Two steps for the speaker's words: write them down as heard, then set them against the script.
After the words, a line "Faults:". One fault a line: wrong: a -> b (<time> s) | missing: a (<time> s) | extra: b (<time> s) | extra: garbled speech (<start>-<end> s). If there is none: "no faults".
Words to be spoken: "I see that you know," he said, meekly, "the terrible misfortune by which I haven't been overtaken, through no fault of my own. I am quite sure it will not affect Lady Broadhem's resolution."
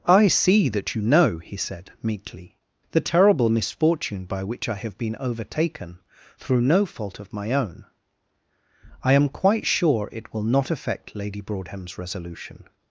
"I see that you know," he said, meekly, "the terrible misfortune by which I have been overtaken, through no fault of my own. I am quite sure it will not affect Lady Broadhem's resolution."
Faults:
wrong: haven't -> have (4.8 s)